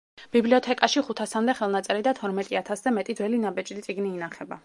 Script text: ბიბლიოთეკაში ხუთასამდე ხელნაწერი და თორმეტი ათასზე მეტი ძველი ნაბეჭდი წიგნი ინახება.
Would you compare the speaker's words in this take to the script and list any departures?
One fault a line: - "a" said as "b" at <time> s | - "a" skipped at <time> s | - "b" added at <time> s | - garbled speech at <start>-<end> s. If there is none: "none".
none